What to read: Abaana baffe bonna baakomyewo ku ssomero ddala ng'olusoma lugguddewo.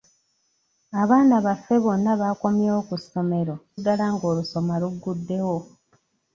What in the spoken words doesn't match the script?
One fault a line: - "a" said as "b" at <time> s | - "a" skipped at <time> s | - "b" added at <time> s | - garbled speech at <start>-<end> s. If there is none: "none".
none